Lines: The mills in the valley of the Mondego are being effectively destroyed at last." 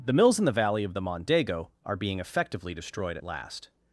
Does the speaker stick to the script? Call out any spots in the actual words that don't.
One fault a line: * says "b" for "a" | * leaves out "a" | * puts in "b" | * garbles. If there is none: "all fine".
all fine